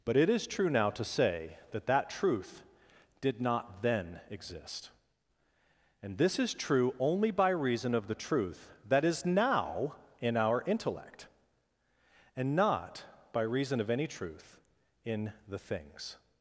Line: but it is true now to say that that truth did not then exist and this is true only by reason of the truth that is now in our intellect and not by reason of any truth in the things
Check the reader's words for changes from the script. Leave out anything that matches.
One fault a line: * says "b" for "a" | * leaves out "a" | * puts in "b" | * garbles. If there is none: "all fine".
all fine